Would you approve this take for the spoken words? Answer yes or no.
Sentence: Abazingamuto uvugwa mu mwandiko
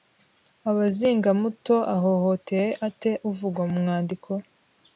no